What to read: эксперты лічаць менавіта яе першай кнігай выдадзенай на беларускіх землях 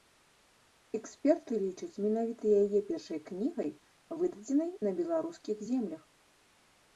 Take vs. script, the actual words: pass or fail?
pass